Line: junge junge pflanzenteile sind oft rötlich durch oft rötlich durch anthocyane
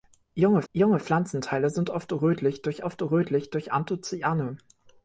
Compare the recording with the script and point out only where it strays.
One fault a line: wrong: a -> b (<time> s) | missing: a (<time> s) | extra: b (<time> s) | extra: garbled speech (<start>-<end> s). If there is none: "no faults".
no faults